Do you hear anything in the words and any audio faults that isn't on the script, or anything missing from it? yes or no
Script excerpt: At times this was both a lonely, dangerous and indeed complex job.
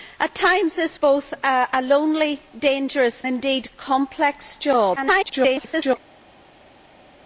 yes